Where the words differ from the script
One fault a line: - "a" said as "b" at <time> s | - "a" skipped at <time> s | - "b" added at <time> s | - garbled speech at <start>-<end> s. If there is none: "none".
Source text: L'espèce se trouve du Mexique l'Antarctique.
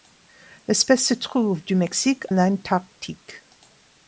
none